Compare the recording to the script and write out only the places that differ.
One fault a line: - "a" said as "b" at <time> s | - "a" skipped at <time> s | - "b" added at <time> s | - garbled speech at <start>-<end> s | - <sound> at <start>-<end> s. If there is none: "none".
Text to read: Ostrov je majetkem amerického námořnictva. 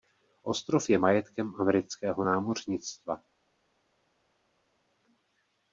none